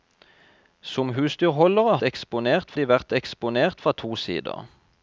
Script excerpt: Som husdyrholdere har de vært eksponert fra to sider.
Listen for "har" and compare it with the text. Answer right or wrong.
wrong